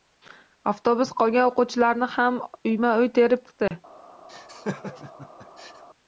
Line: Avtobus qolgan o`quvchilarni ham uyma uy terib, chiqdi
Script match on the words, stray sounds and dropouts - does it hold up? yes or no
no